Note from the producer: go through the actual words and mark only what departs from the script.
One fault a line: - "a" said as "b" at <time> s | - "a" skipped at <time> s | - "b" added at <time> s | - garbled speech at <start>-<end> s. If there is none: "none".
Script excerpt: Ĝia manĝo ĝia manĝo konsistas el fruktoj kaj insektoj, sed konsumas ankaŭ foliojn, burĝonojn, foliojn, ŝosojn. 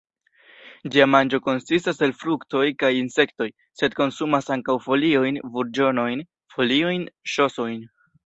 - "ĝia manĝo" skipped at 1.4 s